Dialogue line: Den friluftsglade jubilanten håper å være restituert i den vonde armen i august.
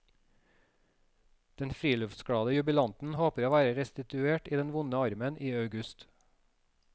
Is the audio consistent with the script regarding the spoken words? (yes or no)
yes